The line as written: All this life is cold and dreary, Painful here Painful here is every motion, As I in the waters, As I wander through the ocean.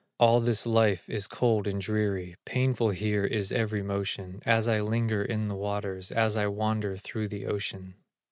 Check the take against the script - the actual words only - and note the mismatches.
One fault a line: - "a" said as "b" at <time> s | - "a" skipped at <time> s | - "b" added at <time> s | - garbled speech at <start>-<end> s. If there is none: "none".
- "Painful here" skipped at 3.2 s
- "linger" added at 4.8 s